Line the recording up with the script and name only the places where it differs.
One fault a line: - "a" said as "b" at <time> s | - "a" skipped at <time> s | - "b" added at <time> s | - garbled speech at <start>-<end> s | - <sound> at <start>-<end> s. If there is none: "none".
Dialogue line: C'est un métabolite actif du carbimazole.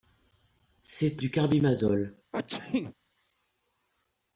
- "un métabolite actif" skipped at 1.2 s
- sneeze at 2.3-2.9 s